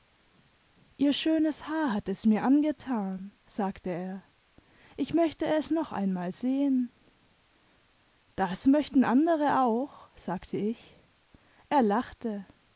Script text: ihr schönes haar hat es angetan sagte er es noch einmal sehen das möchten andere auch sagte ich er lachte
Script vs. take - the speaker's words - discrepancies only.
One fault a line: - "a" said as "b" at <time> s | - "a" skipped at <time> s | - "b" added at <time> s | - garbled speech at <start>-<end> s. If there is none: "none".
- "mir" added at 2.2 s
- "ich möchte" added at 5.0 s